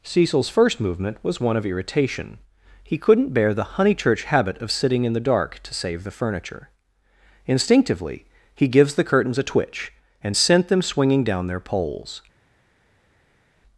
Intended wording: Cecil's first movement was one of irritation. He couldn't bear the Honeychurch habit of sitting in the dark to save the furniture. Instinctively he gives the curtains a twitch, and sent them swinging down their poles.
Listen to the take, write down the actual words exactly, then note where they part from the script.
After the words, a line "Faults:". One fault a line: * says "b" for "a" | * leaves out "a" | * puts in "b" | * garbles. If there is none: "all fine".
Cecil's first movement was one of irritation. He couldn't bear the Honeychurch habit of sitting in the dark to save the furniture. Instinctively he gives the curtains a twitch, and sent them swinging down their poles.
Faults:
all fine